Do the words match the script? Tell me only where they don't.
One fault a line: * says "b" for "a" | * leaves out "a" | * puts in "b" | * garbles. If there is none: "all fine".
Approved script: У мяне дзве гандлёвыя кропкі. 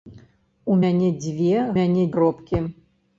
* says "мяне" for "гандлёвыя"